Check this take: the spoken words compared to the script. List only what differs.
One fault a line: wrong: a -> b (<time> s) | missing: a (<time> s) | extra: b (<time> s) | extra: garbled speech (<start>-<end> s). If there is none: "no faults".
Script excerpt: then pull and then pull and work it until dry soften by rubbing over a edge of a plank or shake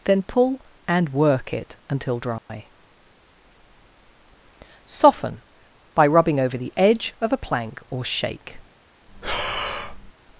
missing: then pull and (1.1 s)
wrong: a -> the (6.6 s)